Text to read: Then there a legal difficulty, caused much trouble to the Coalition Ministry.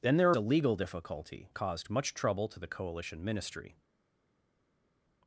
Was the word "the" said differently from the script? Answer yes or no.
no